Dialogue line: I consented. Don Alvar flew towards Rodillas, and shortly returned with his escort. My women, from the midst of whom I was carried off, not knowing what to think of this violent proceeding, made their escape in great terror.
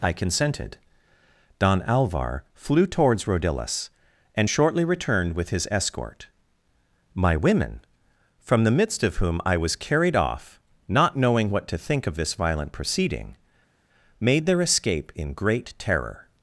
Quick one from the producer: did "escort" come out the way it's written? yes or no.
yes